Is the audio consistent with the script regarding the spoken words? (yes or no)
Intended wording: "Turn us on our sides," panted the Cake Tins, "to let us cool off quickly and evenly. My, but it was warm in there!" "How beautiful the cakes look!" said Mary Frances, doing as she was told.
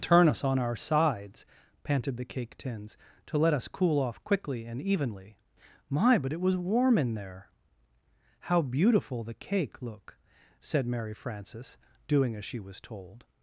no